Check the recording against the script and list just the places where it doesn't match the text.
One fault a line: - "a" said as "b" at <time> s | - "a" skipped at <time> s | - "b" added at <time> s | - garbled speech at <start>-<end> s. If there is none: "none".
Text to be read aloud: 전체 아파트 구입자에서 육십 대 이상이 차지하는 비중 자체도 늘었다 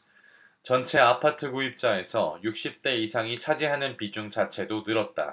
none